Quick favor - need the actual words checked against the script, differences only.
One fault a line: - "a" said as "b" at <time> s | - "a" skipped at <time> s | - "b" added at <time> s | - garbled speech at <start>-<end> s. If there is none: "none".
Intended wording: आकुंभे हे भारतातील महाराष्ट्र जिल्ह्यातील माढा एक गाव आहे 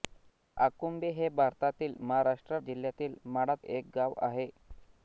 none